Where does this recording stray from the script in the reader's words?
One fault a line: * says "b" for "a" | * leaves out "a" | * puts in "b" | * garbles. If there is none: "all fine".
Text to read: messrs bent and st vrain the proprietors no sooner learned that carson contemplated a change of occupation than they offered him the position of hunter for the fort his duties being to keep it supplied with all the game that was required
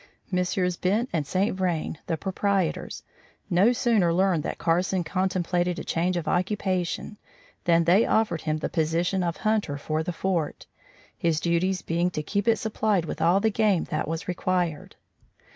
all fine